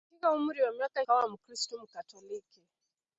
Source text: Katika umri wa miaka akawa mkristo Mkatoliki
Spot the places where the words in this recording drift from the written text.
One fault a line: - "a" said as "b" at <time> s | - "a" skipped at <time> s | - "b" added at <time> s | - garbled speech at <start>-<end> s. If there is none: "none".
none